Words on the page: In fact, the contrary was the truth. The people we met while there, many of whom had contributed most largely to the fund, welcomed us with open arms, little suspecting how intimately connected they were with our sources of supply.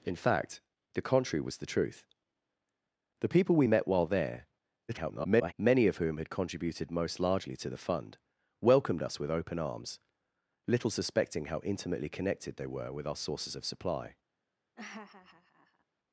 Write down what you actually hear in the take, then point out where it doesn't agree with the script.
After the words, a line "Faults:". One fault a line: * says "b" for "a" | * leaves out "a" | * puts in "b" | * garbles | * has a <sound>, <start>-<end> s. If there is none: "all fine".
In fact, the contrary was the truth. The people we met while there, [garbled] many of whom had contributed most largely to the fund, welcomed us with open arms, little suspecting how intimately connected they were with our sources of supply.
Faults:
* garbles
* has a laugh, 14.8-15.8 s